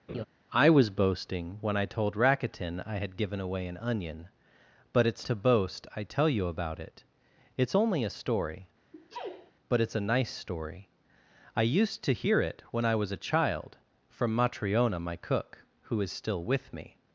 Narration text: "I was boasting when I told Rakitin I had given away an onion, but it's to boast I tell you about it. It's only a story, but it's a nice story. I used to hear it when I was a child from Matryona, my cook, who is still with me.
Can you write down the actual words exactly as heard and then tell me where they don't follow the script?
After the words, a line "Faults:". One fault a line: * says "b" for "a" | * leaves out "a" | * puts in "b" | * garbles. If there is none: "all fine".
"I was boasting when I told Rakitin I had given away an onion, but it's to boast I tell you about it. It's only a story, but it's a nice story. I used to hear it when I was a child from Matryona, my cook, who is still with me.
Faults:
all fine